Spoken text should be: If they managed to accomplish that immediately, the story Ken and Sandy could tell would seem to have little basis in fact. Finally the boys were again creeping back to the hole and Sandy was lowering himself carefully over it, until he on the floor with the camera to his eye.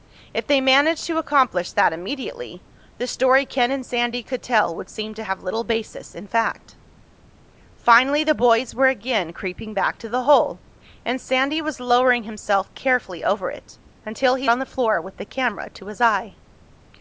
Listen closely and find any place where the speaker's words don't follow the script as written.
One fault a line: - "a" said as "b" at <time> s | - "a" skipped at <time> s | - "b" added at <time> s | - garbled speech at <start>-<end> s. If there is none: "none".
none